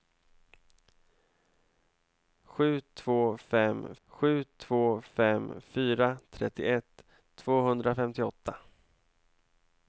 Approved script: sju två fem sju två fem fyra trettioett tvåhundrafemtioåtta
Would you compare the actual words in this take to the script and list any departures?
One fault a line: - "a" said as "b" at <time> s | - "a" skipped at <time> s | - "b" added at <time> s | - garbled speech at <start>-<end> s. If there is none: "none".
none